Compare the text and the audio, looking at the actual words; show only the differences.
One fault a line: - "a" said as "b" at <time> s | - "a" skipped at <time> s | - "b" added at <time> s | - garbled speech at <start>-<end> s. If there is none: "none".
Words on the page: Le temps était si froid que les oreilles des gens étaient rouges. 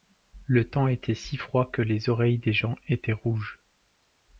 none